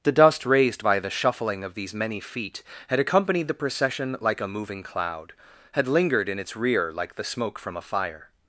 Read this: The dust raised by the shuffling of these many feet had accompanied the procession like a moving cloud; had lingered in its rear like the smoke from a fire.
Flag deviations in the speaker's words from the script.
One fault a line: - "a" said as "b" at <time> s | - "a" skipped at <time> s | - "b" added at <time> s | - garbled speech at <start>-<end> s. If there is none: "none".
none